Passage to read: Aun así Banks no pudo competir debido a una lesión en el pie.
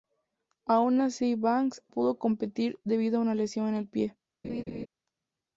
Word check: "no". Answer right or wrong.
wrong